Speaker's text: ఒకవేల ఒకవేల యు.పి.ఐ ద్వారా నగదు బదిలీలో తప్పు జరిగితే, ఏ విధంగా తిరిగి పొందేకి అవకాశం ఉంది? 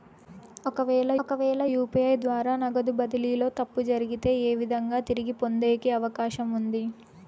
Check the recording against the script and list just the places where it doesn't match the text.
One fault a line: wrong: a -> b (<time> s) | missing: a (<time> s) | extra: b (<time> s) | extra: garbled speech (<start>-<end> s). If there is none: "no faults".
no faults